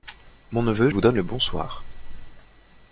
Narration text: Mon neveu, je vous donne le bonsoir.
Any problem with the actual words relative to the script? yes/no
yes